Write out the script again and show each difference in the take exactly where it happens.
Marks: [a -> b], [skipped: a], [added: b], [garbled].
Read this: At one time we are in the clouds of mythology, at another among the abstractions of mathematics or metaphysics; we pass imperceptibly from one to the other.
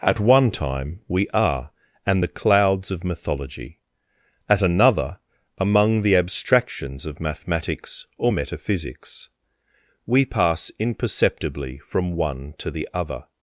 At one time we are [in -> and] the clouds of mythology, at another among the abstractions of mathematics or metaphysics; we pass imperceptibly from one to the other.